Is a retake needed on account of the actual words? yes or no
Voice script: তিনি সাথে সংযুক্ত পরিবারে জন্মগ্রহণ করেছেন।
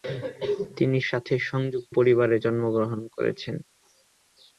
no